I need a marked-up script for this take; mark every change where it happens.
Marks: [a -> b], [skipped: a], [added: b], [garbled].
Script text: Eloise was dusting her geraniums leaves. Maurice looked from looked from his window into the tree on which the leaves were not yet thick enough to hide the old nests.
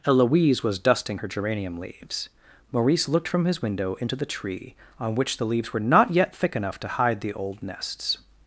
Eloise was dusting her [geraniums -> geranium] leaves. Maurice looked from [skipped: looked from] his window into the tree on which the leaves were not yet thick enough to hide the old nests.